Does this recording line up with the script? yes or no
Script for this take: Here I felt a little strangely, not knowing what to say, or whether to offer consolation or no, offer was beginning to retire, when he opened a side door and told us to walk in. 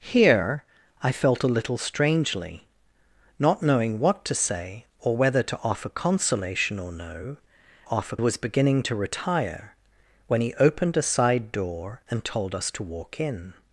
yes